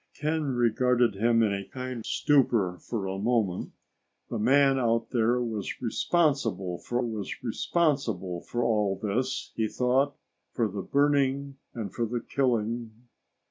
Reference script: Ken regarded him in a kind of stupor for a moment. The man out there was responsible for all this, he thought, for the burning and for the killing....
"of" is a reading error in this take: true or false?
true